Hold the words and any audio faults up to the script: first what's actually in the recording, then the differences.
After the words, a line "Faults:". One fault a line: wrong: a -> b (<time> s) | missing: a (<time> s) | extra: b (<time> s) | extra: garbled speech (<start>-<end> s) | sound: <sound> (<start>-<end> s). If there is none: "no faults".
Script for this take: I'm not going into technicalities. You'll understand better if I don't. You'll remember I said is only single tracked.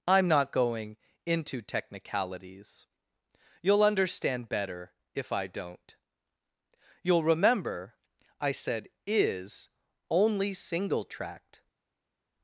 I'm not going into technicalities. You'll understand better if I don't. You'll remember I said is only single tracked.
Faults:
no faults